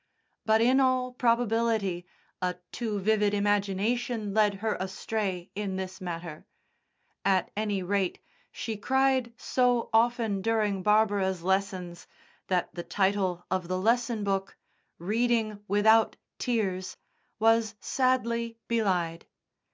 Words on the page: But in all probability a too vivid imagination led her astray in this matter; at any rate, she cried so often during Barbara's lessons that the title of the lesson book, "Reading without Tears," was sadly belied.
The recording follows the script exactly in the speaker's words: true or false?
true